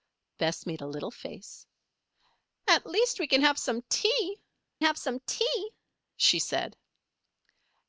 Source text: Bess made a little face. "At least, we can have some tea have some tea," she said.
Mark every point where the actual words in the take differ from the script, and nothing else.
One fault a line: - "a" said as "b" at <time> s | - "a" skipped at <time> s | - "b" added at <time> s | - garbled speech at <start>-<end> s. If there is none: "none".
none